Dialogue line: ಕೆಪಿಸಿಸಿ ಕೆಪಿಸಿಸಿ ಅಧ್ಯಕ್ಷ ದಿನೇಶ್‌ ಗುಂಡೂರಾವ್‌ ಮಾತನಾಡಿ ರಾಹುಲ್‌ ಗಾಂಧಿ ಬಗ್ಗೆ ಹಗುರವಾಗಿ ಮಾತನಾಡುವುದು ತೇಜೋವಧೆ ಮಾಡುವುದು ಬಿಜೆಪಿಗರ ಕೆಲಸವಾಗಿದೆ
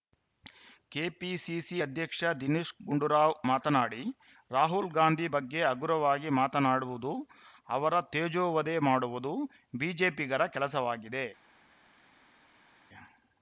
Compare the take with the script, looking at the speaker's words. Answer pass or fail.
fail